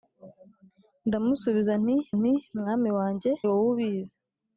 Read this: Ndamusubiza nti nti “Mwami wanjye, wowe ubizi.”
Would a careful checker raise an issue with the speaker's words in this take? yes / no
no